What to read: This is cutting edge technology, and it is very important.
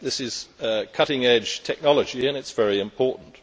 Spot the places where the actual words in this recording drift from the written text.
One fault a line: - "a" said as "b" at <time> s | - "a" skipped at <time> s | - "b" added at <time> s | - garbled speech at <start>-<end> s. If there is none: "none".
none